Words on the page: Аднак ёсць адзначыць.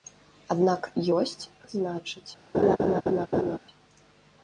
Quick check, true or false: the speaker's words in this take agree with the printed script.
true